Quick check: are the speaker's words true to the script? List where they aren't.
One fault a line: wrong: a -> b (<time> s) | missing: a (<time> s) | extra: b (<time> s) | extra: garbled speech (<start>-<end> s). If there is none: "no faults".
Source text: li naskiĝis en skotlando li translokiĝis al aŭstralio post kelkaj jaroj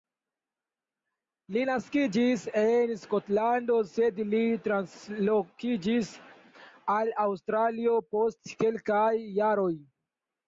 extra: sed (3.9 s)